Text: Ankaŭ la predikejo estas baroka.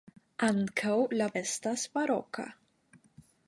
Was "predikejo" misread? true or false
true